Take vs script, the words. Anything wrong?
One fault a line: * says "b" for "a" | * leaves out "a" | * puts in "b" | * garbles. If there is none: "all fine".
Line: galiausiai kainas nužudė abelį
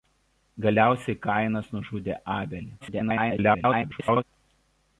* garbles